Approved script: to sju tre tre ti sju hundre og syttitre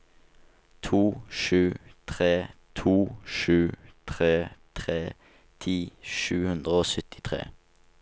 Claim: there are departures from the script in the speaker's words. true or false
true